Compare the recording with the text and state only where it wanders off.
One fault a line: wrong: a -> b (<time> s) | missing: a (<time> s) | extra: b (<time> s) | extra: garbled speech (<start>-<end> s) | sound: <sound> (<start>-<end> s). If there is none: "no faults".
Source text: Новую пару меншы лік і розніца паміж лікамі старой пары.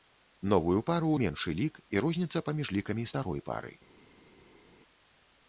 no faults